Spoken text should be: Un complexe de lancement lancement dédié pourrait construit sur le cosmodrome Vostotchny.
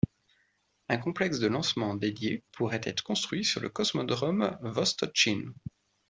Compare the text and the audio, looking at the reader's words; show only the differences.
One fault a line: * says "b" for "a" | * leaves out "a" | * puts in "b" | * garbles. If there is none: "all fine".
* leaves out "lancement"
* puts in "être"